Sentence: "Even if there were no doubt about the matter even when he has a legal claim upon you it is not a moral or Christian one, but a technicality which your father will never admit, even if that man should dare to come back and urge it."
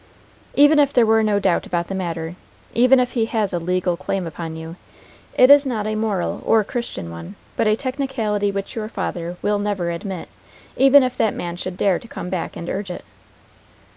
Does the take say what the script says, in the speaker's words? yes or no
no